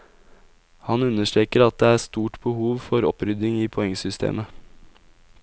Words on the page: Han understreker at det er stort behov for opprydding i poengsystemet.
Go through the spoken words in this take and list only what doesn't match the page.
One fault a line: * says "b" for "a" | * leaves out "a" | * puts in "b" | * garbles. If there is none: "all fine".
all fine